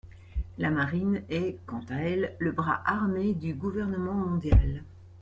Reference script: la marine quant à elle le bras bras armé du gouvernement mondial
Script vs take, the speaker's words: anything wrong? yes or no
yes